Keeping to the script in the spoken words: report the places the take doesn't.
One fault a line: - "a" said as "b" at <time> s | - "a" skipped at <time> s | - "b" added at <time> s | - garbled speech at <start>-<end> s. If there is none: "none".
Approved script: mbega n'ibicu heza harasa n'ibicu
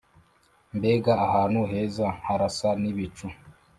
- "n'ibicu" said as "ahantu" at 1.3 s